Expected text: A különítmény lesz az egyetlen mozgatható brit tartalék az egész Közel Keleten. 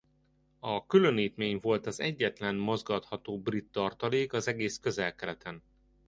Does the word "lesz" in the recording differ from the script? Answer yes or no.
yes